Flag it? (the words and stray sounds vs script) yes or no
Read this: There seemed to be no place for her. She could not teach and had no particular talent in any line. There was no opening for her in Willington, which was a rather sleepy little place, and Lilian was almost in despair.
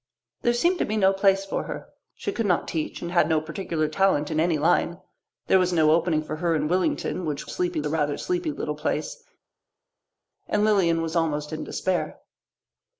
yes